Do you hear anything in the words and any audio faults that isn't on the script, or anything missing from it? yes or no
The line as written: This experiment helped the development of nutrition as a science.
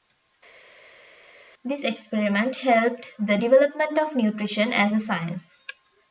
no